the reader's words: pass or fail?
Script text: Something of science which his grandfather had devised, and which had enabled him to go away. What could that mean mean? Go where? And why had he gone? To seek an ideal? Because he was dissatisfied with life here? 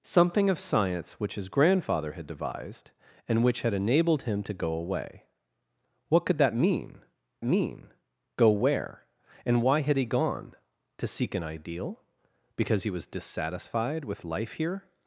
pass